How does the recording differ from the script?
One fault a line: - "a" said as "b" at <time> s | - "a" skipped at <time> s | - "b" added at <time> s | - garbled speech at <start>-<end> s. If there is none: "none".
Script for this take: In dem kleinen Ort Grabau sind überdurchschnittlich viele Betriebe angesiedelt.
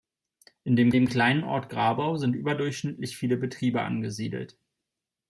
- "dem" added at 0.9 s